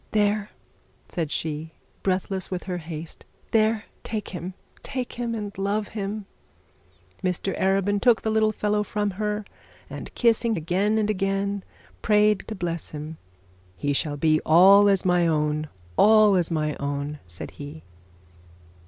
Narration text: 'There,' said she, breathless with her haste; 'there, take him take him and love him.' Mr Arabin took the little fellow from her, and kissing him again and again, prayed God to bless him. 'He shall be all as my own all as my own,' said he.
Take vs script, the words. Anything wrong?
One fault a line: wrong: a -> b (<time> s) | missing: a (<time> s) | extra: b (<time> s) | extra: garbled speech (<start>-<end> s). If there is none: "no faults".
missing: him (10.6 s)
missing: God (12.5 s)